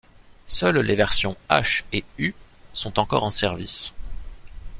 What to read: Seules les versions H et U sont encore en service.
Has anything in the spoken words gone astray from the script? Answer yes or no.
no